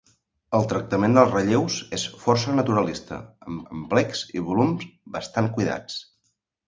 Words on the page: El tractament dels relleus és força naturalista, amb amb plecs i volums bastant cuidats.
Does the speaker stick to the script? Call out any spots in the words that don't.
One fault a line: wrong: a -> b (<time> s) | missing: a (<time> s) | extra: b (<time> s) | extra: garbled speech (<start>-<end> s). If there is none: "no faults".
no faults